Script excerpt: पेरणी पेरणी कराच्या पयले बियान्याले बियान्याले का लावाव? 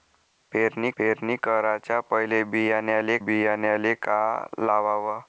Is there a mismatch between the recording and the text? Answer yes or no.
no